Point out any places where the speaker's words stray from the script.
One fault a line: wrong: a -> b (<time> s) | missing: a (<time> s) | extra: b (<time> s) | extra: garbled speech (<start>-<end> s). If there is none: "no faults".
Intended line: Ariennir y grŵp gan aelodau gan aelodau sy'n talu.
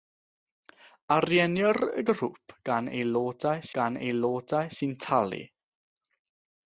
no faults